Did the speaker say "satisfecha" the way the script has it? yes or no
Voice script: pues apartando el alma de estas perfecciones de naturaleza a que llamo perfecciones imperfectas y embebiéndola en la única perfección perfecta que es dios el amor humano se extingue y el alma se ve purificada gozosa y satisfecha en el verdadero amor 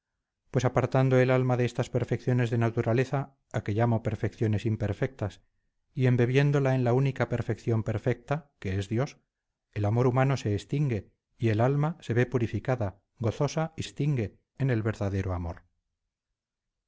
no